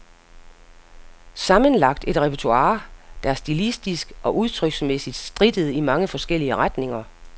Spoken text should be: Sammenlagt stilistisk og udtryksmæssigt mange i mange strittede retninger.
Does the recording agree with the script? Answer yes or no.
no